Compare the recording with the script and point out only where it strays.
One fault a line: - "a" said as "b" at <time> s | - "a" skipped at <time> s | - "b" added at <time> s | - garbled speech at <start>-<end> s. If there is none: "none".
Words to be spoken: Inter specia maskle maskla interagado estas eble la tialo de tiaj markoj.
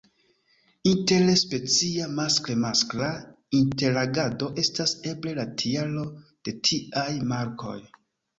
none